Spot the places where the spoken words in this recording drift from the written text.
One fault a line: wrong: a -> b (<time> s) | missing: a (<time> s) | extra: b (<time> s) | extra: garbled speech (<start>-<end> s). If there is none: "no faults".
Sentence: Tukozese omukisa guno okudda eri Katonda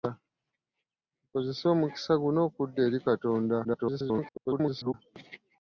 extra: garbled speech (3.6-4.9 s)